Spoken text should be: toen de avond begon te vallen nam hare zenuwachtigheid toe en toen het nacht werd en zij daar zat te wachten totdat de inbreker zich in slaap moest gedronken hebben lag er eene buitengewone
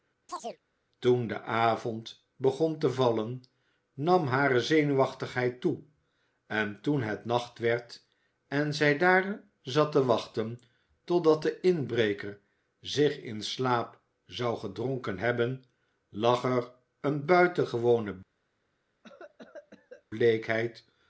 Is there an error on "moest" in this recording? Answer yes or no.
yes